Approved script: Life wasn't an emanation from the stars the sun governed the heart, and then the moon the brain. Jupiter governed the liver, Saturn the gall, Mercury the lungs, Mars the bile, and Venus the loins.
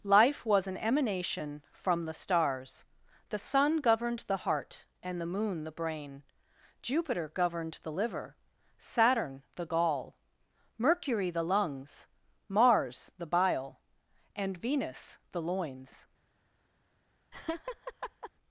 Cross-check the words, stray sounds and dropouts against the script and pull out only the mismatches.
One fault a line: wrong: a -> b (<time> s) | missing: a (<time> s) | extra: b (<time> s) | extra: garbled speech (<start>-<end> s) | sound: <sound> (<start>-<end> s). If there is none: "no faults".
wrong: wasn't -> was (0.5 s)
missing: then (5.2 s)
sound: laugh (17.3-18.3 s)